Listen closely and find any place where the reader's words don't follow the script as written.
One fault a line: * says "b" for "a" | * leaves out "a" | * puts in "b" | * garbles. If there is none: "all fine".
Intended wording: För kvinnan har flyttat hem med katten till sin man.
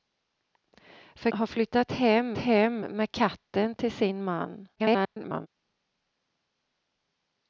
* leaves out "kvinnan"
* puts in "hem"
* garbles